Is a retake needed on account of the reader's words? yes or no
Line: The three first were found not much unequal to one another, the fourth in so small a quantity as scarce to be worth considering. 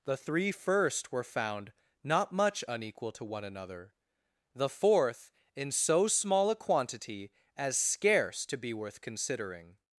no